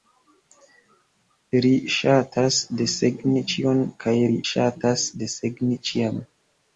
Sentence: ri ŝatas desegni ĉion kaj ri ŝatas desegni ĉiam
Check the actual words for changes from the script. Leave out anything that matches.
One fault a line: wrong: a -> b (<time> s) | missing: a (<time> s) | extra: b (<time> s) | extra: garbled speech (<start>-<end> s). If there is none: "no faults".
no faults